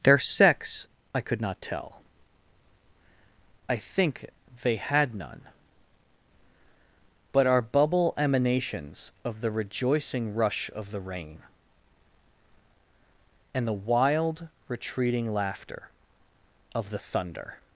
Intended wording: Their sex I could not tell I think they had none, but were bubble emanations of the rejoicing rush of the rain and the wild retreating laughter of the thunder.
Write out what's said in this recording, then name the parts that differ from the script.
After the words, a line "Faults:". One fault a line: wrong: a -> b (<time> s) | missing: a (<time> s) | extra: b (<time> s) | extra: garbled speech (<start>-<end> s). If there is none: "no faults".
Their sex I could not tell I think they had none, but are bubble emanations of the rejoicing rush of the rain and the wild retreating laughter of the thunder.
Faults:
wrong: were -> are (7.5 s)